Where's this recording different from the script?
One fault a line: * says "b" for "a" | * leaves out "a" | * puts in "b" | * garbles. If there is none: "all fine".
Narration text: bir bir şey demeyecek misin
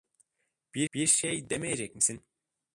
all fine